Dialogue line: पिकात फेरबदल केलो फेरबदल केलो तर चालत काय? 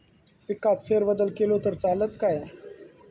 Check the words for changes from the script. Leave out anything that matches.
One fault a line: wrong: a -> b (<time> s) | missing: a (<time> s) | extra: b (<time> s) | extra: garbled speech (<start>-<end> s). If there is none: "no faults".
missing: फेरबदल केलो (1.6 s)